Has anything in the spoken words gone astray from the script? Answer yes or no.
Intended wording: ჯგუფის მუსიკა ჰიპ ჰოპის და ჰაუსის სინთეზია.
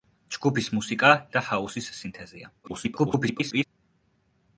yes